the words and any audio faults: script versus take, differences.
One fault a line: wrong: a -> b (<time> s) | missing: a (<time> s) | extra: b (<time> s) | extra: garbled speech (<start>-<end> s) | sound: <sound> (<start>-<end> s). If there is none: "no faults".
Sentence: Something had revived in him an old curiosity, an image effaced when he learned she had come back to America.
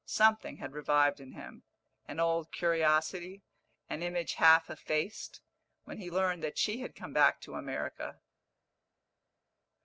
extra: half (4.3 s)
extra: that (6.4 s)